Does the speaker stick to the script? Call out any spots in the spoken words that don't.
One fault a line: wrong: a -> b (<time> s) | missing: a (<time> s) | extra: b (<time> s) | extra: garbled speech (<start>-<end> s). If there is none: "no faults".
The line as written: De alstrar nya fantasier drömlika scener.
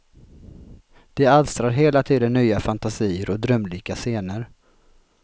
extra: hela tiden (1.7 s)
extra: och (3.3 s)